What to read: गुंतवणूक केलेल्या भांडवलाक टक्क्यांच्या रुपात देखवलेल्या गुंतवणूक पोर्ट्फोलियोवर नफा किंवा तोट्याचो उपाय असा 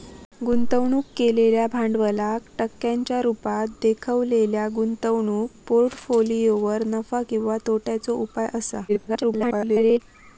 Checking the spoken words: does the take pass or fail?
fail